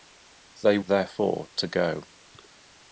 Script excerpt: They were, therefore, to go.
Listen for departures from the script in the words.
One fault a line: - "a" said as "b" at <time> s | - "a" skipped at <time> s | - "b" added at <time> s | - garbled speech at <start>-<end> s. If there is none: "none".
- "were" skipped at 0.8 s